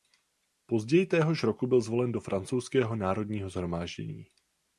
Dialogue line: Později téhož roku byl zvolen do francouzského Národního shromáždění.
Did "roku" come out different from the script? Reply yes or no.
no